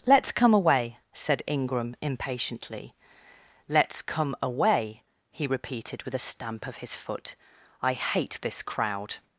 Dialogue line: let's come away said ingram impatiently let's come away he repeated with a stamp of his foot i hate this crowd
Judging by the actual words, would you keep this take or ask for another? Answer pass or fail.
pass